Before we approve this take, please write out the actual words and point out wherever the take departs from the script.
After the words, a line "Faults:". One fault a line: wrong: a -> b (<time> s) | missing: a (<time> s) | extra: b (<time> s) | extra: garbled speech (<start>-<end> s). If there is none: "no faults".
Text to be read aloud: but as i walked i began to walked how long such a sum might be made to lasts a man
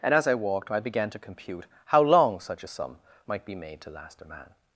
and as i walked i began to compute how long such a sum might be made to last a man
Faults:
wrong: but -> and (0.0 s)
wrong: walked -> compute (1.2 s)
wrong: lasts -> last (3.9 s)